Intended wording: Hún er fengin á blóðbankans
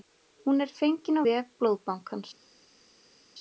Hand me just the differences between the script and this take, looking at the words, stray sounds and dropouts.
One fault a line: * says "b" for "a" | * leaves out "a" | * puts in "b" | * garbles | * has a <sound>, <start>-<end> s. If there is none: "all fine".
* puts in "vef"